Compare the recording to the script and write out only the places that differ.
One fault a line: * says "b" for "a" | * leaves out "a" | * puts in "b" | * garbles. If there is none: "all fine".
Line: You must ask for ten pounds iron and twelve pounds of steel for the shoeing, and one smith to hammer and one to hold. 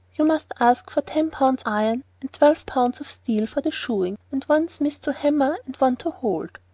all fine